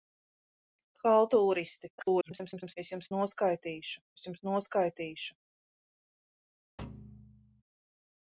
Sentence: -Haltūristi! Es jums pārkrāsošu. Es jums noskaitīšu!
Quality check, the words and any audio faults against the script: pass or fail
fail